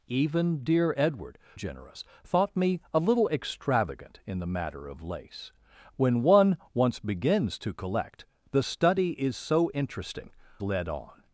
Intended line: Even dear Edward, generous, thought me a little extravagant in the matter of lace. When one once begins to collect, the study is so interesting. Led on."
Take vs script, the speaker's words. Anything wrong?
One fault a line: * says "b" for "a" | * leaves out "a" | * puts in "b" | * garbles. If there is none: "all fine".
all fine